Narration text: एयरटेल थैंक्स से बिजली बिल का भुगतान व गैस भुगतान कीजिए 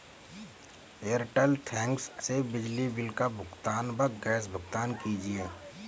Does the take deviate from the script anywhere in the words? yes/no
no